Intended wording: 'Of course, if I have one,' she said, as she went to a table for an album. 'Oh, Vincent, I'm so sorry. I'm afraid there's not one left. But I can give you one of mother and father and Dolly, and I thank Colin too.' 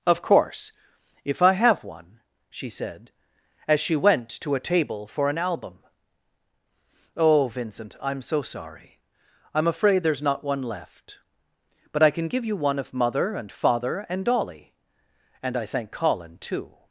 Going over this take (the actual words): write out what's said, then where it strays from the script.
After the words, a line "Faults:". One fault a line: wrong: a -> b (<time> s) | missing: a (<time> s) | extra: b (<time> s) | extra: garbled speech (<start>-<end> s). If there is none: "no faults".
'Of course, if I have one,' she said, as she went to a table for an album. 'Oh, Vincent, I'm so sorry. I'm afraid there's not one left. But I can give you one of mother and father and Dolly, and I thank Colin too.'
Faults:
no faults